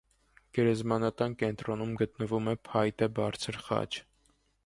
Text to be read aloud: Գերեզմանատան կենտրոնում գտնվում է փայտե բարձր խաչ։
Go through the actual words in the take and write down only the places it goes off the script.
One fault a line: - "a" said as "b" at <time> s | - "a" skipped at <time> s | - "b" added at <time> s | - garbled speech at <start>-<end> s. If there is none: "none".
none